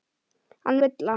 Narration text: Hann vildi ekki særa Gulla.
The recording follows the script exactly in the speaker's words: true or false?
false